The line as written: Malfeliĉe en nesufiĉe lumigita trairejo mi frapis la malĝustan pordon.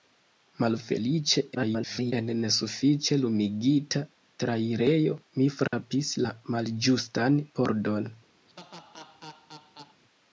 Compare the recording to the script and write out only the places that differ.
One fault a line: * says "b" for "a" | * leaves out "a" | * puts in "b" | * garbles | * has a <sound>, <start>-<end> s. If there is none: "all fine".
* garbles
* has a dropout, 5.7-5.7 s
* has a laugh, 8.5-10.0 s